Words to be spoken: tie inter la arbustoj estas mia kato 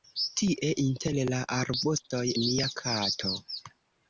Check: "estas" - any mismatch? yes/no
yes